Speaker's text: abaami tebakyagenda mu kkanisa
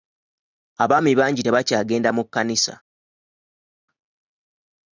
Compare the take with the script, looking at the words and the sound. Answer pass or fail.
fail